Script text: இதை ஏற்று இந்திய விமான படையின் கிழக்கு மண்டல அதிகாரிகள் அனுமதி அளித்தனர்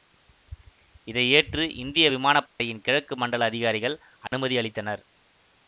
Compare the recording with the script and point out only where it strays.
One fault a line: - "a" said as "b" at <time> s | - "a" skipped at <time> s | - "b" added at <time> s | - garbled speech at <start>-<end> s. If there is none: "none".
none